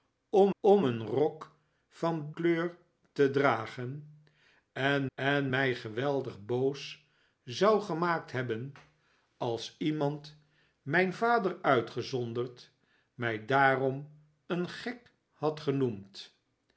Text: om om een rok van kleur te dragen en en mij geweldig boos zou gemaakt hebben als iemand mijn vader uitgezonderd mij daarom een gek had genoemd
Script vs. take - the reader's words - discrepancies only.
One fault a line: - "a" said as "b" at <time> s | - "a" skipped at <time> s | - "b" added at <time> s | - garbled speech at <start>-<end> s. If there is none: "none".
none